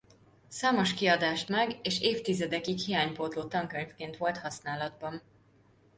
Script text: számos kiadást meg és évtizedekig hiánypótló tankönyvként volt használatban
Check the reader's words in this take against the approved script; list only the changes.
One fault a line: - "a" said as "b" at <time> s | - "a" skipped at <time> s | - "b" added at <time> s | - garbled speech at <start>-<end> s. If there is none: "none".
none